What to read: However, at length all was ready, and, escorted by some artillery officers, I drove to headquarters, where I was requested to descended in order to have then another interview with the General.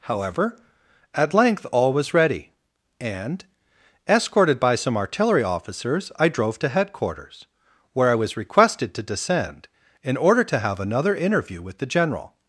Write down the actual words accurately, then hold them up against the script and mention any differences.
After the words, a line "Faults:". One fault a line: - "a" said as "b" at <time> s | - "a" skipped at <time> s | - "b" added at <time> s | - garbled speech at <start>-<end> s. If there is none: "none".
However, at length all was ready, and, escorted by some artillery officers, I drove to headquarters, where I was requested to descend in order to have another interview with the General.
Faults:
- "descended" said as "descend" at 9.0 s
- "then" skipped at 10.8 s